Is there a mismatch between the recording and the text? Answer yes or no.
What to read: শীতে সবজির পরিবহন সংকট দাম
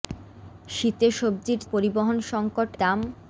no